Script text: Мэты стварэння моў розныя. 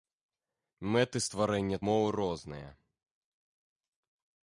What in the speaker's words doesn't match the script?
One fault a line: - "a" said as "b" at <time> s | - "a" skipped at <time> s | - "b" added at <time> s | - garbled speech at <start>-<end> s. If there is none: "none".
none